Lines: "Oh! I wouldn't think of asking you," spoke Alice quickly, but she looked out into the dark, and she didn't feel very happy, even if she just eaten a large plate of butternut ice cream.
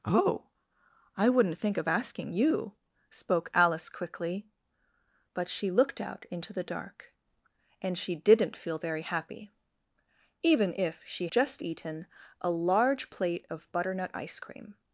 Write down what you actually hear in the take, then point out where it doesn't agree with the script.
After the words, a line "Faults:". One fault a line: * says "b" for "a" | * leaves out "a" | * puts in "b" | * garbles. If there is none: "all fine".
"Oh! I wouldn't think of asking you," spoke Alice quickly, but she looked out into the dark, and she didn't feel very happy, even if she just eaten a large plate of butternut ice cream.
Faults:
all fine